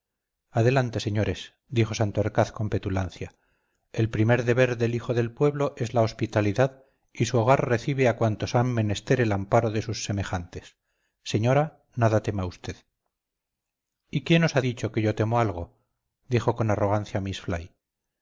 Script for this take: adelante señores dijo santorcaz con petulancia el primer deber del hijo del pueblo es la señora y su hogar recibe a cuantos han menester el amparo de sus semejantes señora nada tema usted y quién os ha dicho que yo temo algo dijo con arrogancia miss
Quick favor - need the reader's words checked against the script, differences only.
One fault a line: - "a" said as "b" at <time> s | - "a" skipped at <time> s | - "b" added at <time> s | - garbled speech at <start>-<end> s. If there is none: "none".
- "señora" said as "hospitalidad" at 6.0 s